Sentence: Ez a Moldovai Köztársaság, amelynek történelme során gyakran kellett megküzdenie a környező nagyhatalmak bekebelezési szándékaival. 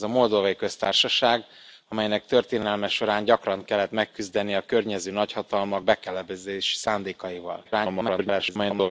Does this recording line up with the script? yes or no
no